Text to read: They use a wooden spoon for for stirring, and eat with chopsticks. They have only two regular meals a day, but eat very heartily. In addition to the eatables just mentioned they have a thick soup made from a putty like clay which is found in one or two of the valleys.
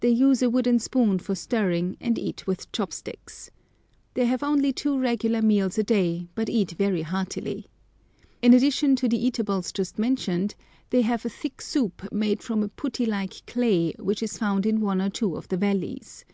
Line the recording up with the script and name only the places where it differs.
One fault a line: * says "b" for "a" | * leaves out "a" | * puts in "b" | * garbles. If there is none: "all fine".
* leaves out "for"